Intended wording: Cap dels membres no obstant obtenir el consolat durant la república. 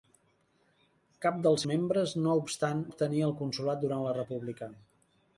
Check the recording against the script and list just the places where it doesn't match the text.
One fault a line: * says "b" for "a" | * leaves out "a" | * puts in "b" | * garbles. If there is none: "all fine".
all fine